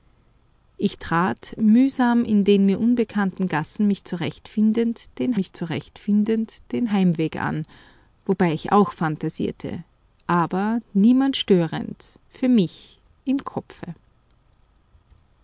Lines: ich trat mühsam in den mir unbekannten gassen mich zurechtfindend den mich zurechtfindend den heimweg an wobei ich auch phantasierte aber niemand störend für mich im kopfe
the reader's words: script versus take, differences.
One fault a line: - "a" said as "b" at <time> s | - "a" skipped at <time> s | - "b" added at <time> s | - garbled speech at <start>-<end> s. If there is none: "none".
none